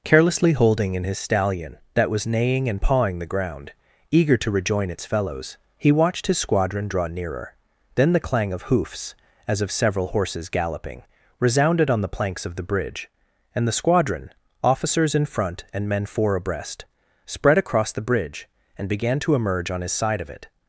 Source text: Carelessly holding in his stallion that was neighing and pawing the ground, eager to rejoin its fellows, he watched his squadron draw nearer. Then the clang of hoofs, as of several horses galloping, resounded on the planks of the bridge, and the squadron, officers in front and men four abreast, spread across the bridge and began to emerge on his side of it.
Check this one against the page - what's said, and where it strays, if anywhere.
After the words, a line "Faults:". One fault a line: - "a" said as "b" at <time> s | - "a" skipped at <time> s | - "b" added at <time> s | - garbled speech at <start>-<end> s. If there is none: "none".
Carelessly holding in his stallion that was neighing and pawing the ground, eager to rejoin its fellows, he watched his squadron draw nearer. Then the clang of hoofs, as of several horses galloping, resounded on the planks of the bridge, and the squadron, officers in front and men four abreast, spread across the bridge and began to emerge on his side of it.
Faults:
none